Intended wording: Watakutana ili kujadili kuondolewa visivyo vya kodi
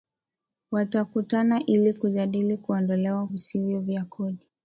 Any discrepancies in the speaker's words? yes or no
no